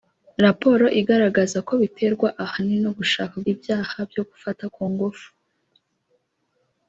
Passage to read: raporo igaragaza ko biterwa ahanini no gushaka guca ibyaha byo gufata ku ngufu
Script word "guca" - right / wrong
wrong